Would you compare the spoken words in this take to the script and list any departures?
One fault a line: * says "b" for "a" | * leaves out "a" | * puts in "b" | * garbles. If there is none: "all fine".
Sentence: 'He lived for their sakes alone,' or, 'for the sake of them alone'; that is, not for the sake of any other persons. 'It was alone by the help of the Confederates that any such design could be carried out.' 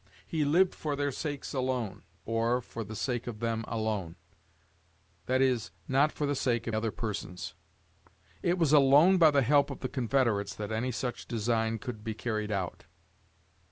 * leaves out "any"